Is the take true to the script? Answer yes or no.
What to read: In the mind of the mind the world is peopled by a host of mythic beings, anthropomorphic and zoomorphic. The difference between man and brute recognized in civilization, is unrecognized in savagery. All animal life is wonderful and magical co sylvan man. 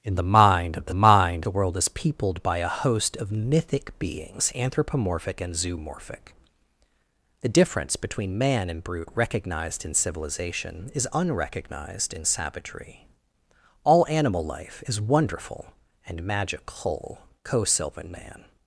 yes